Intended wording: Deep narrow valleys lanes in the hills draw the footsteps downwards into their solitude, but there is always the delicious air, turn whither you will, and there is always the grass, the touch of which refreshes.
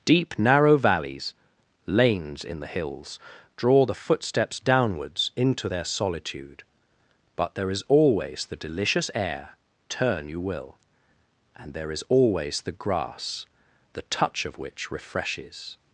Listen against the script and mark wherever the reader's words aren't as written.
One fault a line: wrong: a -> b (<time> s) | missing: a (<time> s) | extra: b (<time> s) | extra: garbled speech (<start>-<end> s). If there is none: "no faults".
missing: whither (10.3 s)